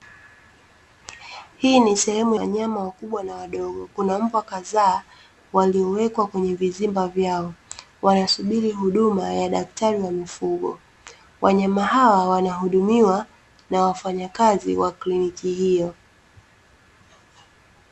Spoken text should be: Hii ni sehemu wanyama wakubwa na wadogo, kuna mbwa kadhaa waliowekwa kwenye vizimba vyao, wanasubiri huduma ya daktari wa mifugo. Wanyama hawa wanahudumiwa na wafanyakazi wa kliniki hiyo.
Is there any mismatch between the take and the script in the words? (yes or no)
no